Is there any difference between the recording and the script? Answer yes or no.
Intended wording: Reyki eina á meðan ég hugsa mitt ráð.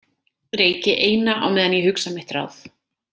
no